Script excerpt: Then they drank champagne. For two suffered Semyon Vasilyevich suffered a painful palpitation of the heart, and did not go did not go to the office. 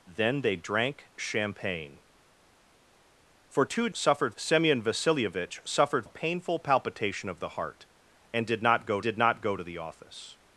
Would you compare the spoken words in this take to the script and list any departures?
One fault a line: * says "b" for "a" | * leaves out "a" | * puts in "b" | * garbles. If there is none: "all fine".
all fine